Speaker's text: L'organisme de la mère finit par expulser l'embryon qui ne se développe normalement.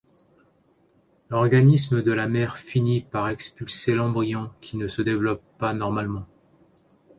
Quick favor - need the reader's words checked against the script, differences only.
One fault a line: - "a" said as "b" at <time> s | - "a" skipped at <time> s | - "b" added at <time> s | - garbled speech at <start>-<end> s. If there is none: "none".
- "pas" added at 5.6 s